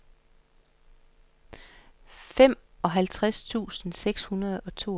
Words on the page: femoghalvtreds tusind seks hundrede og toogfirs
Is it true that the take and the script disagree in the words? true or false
false